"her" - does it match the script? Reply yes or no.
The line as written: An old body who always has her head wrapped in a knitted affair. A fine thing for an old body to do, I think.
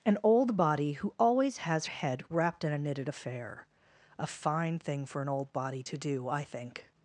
no